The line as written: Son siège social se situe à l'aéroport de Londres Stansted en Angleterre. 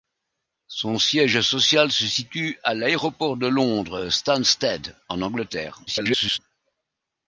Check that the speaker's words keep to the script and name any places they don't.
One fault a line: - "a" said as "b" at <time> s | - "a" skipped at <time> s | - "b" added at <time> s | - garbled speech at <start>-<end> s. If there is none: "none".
- garbled speech at 5.9-6.4 s